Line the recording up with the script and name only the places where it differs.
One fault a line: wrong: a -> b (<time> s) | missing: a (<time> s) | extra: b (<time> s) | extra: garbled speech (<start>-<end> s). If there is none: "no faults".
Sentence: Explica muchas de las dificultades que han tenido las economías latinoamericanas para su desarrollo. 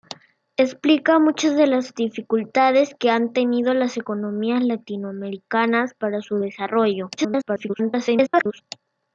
extra: garbled speech (7.2-8.6 s)